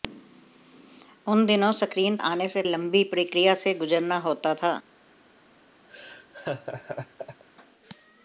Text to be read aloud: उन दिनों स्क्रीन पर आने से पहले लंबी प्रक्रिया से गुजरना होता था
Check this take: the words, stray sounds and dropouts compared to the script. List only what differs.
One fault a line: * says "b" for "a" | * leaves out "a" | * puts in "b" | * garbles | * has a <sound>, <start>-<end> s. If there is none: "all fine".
* leaves out "पर"
* leaves out "पहले"
* has a laugh, 5.9-7.4 s